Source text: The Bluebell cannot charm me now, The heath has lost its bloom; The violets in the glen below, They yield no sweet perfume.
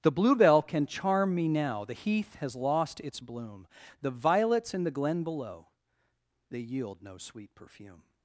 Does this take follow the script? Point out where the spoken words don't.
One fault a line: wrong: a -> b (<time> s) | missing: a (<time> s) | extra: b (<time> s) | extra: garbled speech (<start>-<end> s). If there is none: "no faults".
wrong: cannot -> can (0.6 s)